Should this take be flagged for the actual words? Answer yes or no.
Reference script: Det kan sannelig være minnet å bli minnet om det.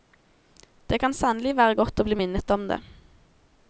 yes